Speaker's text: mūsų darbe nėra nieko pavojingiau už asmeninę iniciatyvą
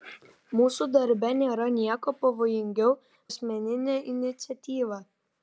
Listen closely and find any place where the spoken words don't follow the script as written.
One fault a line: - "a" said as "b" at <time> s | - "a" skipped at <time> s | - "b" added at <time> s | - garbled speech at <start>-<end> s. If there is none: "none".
- "už" skipped at 3.0 s